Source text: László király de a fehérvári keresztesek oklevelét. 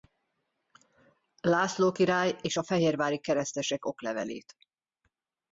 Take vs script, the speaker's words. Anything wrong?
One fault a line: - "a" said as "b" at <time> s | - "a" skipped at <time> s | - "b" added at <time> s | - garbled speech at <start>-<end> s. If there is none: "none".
- "de" said as "és" at 2.4 s